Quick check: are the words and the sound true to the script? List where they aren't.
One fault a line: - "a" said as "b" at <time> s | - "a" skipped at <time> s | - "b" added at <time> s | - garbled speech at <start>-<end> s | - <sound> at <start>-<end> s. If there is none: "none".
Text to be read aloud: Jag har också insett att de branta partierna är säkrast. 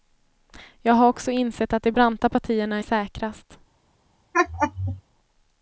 - laugh at 4.3-5.0 s